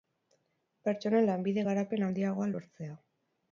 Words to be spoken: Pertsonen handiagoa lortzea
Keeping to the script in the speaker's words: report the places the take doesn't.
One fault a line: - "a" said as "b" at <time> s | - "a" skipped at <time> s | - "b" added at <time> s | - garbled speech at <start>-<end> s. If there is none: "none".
- "lanbide garapen" added at 1.3 s